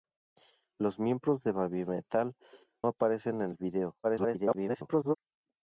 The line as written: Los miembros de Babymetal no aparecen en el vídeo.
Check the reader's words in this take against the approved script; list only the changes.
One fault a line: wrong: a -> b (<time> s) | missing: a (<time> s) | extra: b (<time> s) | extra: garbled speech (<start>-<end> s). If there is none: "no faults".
missing: no (2.4 s)
extra: garbled speech (4.0-5.2 s)